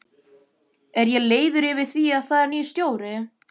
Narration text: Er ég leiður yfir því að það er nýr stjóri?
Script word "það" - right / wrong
right